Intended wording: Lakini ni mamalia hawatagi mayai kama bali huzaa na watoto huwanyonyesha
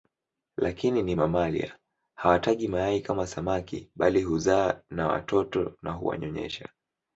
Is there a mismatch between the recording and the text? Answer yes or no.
yes